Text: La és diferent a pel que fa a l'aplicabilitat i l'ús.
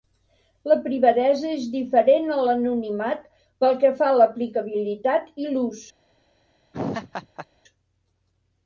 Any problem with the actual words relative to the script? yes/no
yes